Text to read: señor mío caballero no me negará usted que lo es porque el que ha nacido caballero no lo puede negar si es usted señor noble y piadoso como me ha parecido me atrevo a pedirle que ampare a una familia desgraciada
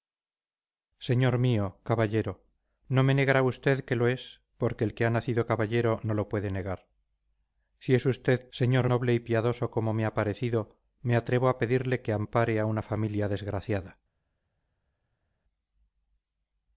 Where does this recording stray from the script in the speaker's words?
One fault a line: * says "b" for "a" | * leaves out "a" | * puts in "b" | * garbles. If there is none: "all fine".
all fine